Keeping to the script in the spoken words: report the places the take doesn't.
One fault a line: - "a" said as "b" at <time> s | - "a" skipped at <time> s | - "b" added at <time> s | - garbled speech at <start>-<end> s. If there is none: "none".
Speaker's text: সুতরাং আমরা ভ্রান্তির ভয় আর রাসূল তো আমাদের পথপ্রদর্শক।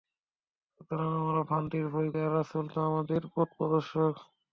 none